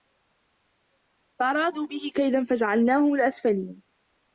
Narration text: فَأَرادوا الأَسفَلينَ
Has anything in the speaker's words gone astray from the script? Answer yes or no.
yes